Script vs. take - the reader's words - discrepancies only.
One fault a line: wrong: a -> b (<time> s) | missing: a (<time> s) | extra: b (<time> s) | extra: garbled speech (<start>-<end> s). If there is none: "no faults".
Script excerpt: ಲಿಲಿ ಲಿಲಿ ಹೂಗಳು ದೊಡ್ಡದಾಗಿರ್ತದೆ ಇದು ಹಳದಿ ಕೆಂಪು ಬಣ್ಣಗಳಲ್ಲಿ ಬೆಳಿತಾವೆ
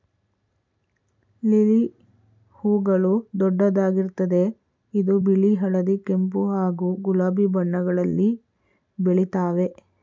missing: ಲಿಲಿ (1.8 s)
extra: ಬಿಳಿ (5.2 s)
extra: ಹಾಗೂ ಗುಲಾಬಿ (6.5 s)